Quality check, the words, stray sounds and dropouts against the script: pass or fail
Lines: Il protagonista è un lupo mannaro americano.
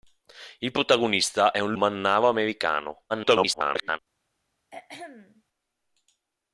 fail